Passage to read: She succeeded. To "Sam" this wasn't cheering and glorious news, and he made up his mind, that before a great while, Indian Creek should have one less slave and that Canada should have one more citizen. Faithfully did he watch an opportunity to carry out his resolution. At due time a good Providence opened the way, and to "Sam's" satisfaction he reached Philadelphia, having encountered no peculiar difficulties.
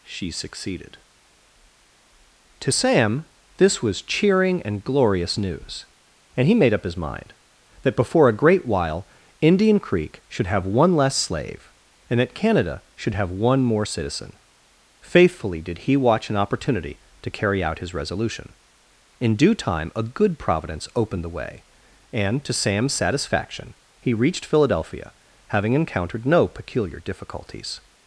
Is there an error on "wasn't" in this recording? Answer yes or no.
yes